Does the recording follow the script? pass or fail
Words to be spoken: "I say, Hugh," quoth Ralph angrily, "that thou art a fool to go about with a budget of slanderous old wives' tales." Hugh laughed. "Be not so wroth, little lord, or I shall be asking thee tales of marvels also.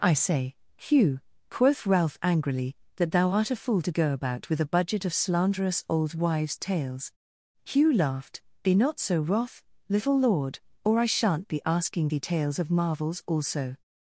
fail